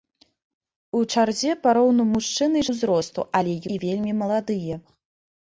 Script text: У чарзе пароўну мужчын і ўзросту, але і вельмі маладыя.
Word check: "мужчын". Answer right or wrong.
right